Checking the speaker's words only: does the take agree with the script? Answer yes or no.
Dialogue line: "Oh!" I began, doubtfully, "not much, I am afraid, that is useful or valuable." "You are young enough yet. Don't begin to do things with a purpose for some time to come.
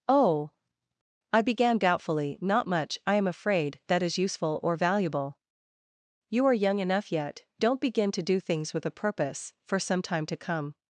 yes